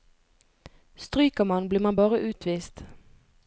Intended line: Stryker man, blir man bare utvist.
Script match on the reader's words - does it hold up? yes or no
yes